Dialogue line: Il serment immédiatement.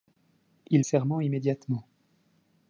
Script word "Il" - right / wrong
right